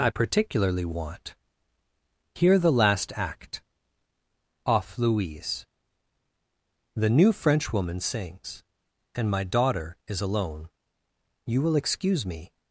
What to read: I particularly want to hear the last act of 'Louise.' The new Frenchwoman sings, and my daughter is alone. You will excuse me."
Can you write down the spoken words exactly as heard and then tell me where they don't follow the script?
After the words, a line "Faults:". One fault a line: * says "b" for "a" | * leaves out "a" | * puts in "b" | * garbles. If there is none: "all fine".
I particularly want hear the last act off 'Louise.' The new Frenchwoman sings, and my daughter is alone. You will excuse me."
Faults:
* leaves out "to"
* says "off" for "of"